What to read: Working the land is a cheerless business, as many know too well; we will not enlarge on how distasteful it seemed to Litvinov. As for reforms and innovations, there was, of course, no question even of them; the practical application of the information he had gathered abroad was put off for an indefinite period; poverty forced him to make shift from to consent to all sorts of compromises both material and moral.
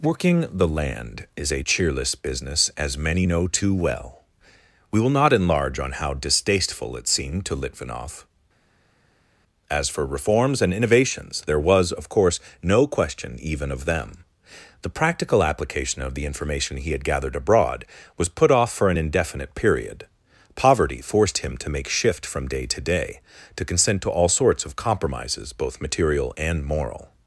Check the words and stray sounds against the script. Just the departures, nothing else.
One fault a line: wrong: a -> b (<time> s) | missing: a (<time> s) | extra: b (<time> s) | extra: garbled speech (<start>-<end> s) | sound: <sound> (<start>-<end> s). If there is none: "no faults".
extra: day to day (22.5 s)